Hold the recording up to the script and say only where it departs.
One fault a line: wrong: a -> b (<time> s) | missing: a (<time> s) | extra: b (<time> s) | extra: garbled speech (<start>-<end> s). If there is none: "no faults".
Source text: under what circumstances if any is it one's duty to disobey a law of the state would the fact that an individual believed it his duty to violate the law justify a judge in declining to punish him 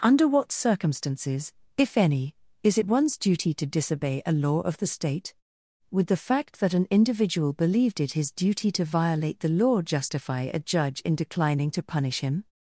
no faults